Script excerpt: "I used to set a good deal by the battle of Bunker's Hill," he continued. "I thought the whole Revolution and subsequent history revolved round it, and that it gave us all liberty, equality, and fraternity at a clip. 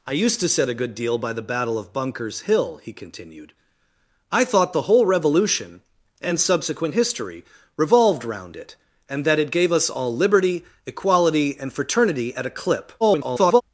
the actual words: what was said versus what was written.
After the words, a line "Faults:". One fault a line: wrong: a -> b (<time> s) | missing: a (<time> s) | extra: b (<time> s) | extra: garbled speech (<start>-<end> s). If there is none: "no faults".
"I used to set a good deal by the battle of Bunker's Hill," he continued. "I thought the whole Revolution and subsequent history revolved round it, and that it gave us all liberty, equality, and fraternity at a clip. [garbled]
Faults:
extra: garbled speech (13.0-13.6 s)